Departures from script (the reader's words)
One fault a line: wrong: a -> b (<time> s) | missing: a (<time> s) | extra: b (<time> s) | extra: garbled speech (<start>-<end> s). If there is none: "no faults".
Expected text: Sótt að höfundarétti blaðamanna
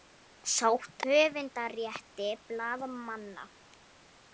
missing: að (1.0 s)